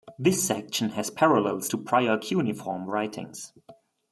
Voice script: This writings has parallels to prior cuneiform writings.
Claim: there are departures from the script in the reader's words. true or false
true